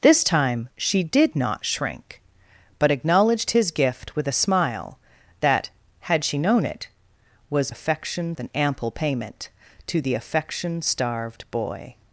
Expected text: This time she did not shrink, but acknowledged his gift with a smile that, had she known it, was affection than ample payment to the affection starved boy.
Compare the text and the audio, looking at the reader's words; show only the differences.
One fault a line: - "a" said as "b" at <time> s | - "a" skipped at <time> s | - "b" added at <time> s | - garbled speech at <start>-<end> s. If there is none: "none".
none